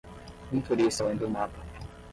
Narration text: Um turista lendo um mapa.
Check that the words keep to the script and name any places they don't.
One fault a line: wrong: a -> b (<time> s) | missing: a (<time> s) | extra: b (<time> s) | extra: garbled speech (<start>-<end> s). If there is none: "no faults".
no faults